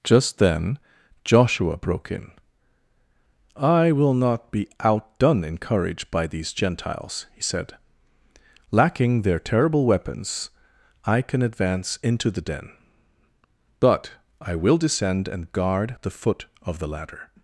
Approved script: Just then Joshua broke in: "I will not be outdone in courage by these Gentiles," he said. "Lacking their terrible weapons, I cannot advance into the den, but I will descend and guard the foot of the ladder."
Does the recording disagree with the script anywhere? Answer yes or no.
yes